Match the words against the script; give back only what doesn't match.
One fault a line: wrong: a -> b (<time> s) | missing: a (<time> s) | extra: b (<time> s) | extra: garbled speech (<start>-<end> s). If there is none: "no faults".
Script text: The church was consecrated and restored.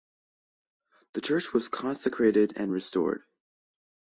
no faults